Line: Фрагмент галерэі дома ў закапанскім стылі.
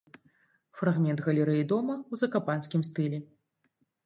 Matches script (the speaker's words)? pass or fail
pass